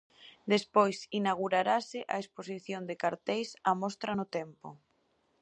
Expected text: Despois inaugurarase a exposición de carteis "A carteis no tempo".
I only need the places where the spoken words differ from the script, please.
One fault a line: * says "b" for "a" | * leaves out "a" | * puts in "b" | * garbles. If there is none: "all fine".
* says "mostra" for "carteis"